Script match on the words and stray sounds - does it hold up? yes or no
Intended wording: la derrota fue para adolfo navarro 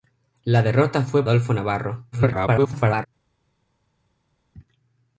no